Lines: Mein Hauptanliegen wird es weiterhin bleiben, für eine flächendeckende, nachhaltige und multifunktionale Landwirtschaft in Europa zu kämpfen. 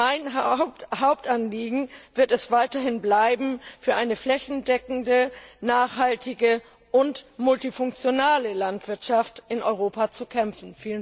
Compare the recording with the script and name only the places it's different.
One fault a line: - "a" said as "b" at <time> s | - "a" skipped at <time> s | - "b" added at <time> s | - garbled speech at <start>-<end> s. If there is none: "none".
none